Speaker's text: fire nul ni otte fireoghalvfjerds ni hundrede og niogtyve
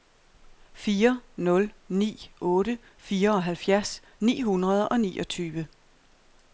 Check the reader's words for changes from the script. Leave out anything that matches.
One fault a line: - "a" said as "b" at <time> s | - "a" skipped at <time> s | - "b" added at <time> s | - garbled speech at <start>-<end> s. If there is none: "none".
none